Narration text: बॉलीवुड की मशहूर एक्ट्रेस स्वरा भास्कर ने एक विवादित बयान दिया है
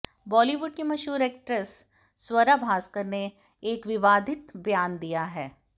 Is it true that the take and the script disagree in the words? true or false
false